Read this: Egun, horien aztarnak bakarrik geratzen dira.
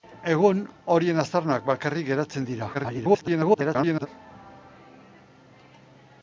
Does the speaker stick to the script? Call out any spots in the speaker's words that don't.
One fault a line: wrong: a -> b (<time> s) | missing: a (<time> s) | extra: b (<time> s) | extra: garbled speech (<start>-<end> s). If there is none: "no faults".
extra: garbled speech (2.7-4.1 s)